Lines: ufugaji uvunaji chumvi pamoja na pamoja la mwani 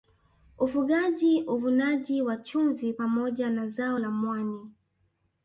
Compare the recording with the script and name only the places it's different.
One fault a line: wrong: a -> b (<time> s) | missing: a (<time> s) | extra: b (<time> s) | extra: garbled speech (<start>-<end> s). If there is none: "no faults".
extra: wa (2.2 s)
wrong: pamoja -> zao (3.7 s)